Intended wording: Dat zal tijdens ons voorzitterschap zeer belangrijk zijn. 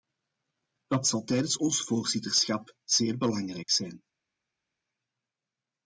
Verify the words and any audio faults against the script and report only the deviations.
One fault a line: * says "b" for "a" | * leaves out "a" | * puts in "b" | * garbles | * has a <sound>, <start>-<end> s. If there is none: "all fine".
all fine